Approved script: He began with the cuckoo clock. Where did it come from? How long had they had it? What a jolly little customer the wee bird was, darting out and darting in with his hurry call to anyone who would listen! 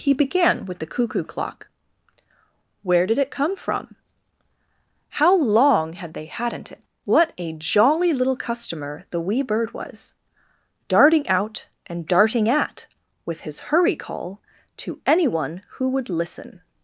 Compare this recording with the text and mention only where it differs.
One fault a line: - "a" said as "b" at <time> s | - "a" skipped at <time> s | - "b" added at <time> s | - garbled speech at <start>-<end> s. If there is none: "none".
- "had" said as "hadn't" at 6.2 s
- "in" said as "at" at 12.5 s